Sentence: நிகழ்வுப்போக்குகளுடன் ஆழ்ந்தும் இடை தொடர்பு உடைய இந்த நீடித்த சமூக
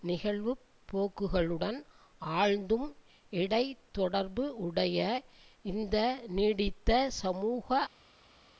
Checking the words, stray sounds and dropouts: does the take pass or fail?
pass